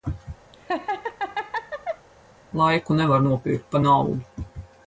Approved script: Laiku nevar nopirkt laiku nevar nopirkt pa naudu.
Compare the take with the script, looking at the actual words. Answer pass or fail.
fail